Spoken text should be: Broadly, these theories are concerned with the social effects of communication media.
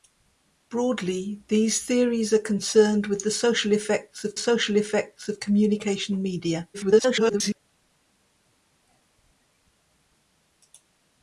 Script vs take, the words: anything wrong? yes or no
yes